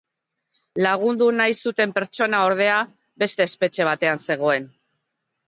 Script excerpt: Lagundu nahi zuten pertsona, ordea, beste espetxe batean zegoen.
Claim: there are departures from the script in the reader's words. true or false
false